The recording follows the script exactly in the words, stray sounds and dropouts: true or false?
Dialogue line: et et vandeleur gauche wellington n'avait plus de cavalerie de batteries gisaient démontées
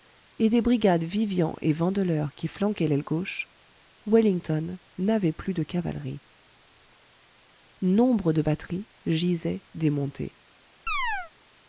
false